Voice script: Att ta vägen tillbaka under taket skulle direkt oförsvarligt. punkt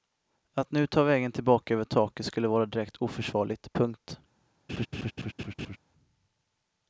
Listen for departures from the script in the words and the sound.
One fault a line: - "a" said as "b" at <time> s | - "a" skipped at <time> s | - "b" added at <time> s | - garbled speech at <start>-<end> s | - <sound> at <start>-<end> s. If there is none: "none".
- "nu" added at 0.7 s
- "under" said as "över" at 1.7 s
- "vara" added at 2.5 s
- laugh at 4.7-5.8 s